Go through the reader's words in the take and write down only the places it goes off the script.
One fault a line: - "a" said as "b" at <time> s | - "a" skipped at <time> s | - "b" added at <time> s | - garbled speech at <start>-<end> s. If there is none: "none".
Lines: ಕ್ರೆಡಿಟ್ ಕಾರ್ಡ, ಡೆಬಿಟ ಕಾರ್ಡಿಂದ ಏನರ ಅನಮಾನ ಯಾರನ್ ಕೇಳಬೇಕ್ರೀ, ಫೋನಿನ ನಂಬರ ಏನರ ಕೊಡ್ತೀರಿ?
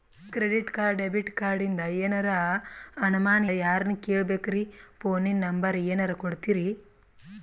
none